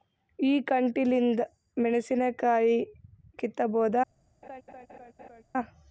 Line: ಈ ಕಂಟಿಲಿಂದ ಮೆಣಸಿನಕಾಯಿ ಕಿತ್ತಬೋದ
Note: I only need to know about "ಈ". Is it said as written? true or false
true